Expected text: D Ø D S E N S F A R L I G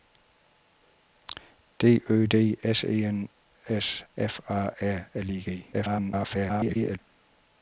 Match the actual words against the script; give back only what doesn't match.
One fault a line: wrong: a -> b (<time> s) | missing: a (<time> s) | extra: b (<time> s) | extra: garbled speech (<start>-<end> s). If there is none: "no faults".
extra: garbled speech (5.7-7.0 s)